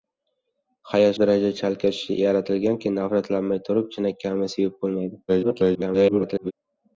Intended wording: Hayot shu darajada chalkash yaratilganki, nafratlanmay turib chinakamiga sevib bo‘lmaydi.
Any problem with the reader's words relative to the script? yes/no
yes